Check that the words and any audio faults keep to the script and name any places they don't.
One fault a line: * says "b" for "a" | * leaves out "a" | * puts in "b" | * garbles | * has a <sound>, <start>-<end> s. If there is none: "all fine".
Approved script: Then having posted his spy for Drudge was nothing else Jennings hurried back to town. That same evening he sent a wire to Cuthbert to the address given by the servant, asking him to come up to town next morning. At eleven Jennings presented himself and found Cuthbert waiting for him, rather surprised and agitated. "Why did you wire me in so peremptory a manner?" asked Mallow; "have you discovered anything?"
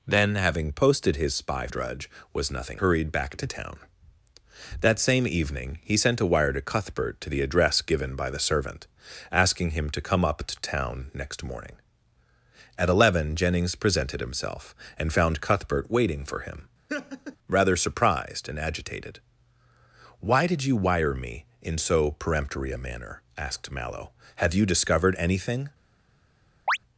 * leaves out "for"
* leaves out "else Jennings"
* has a laugh, 16.9-17.4 s
* has a chirp, 26.7-26.8 s